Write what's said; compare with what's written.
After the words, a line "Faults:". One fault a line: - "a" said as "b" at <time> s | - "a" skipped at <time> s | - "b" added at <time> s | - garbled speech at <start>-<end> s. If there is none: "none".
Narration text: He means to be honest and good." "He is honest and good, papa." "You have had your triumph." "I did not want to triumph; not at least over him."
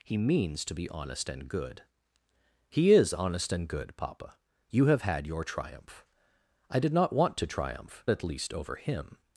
He means to be honest and good." "He is honest and good, papa." "You have had your triumph." "I did not want to triumph; at least over him."
Faults:
- "not" skipped at 8.0 s